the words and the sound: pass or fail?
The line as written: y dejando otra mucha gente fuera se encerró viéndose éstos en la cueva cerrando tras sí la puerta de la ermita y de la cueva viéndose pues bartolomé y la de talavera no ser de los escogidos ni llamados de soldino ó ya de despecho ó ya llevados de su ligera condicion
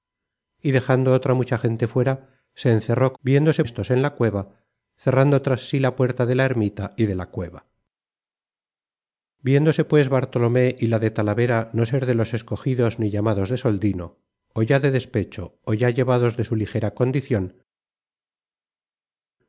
pass